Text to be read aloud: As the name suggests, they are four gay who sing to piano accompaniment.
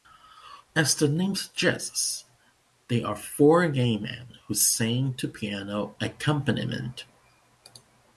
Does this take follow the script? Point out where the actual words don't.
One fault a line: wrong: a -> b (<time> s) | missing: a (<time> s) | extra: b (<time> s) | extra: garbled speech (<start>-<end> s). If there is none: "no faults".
extra: men (4.0 s)